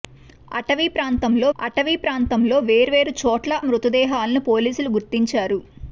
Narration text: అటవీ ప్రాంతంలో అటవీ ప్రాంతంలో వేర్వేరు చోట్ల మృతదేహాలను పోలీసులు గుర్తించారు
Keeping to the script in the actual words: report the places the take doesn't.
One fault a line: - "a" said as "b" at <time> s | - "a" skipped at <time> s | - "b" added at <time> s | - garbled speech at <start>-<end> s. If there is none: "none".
none